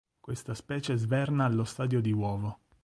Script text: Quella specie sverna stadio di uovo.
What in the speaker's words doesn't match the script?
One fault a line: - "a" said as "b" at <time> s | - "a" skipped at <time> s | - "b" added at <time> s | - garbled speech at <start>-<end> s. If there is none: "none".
- "Quella" said as "Questa" at 0.2 s
- "allo" added at 1.4 s